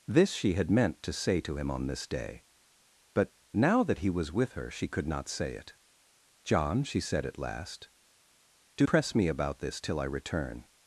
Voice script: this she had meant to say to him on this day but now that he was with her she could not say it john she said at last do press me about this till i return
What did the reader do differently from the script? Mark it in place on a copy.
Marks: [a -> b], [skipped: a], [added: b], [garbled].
this she had meant to say to him on this day but now that he was with her she could not say it john she said at last do press me about this till i return